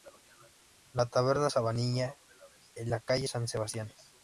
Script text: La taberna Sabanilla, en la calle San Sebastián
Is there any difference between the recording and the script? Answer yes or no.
no